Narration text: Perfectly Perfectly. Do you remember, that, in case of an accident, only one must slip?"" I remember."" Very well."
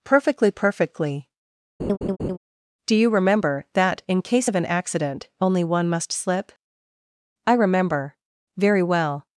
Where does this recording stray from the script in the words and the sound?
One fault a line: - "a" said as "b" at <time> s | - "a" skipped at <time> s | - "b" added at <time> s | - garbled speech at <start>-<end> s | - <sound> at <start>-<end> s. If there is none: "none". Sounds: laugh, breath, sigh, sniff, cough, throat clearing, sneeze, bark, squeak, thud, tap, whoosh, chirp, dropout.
- laugh at 1.8-2.4 s